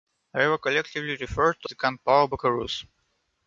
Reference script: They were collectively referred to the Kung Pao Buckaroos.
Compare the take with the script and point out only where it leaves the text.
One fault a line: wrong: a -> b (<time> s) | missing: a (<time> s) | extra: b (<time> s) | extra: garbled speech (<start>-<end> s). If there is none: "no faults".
no faults